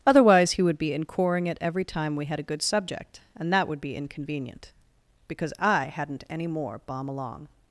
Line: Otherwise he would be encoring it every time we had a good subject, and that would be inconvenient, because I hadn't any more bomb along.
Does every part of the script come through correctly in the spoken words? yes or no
yes